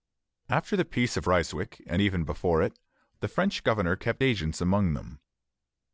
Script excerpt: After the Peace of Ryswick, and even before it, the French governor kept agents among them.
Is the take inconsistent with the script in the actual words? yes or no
no